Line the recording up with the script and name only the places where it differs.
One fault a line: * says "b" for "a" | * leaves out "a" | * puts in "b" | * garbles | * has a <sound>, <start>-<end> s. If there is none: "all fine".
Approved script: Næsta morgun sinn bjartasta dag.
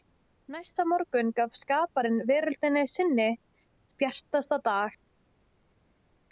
* puts in "gaf skaparinn veröldinni"